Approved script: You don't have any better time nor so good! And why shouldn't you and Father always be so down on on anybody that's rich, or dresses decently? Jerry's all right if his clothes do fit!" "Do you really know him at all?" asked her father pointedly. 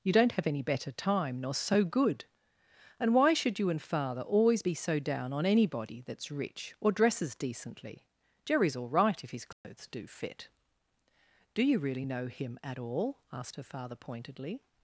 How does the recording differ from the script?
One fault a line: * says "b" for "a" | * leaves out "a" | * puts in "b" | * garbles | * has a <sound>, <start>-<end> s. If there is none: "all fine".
* says "should" for "shouldn't"
* leaves out "on"
* has a dropout, 9.5-9.6 s